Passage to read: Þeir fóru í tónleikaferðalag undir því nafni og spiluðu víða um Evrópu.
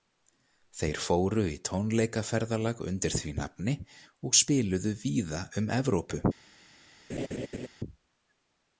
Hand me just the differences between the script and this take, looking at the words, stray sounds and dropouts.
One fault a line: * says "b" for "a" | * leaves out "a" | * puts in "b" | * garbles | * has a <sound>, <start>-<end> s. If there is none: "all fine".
* has a laugh, 7.1-7.7 s